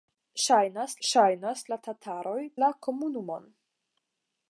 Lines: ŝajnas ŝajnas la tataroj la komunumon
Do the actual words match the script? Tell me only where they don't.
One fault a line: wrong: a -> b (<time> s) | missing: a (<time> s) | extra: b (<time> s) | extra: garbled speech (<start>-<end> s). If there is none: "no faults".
no faults